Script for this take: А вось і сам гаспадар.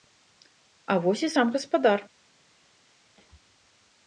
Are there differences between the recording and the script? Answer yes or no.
no